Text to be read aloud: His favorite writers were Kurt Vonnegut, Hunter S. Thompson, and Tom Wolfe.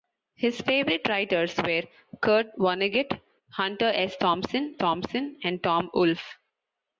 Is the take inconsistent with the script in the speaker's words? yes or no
yes